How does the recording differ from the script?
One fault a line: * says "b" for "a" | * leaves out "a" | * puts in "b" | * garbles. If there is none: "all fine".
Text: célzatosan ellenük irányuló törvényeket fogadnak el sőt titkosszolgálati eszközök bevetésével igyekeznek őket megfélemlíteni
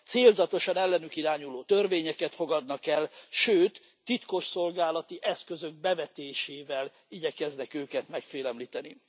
all fine